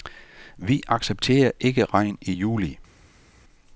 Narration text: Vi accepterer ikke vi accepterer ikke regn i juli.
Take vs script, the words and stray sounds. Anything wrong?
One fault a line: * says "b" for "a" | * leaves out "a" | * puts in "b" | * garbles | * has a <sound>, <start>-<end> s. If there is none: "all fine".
* leaves out "vi accepterer ikke"